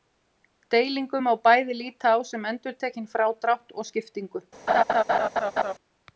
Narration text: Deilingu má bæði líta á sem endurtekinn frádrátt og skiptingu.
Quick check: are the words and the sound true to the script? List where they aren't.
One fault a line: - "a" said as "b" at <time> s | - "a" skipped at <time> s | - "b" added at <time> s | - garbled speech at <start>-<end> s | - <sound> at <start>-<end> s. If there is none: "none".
- laugh at 4.7-5.7 s